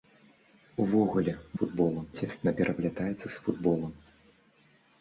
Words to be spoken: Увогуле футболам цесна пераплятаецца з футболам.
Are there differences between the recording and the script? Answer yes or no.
no